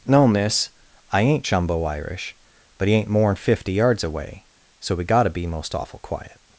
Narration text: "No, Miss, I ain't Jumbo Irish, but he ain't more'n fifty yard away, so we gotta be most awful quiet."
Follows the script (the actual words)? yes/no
no